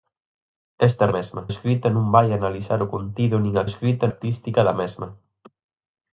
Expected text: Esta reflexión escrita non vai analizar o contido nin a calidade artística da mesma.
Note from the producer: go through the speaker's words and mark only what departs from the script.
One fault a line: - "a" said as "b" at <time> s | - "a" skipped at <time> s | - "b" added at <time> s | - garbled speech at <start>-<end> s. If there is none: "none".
- "reflexión" said as "mesma" at 1.2 s
- "calidade" said as "escrita" at 3.7 s